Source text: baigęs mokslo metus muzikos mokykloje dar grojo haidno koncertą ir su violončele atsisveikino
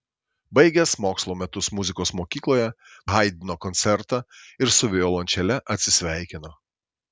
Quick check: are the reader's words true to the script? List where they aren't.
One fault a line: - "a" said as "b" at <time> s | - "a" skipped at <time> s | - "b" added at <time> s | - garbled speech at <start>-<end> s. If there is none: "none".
- "dar grojo" skipped at 2.6 s